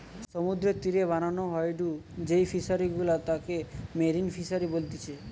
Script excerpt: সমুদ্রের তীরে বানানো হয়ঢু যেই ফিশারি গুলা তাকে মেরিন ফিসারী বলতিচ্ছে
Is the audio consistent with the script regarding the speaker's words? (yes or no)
yes